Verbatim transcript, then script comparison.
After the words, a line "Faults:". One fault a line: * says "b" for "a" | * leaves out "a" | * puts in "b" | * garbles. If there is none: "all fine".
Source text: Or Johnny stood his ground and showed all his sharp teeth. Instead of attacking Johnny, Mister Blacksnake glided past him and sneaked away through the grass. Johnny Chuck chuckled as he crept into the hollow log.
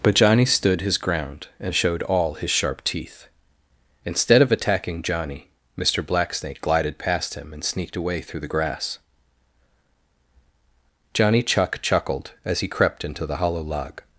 But Johnny stood his ground and showed all his sharp teeth. Instead of attacking Johnny, Mister Blacksnake glided past him and sneaked away through the grass. Johnny Chuck chuckled as he crept into the hollow log.
Faults:
* says "But" for "Or"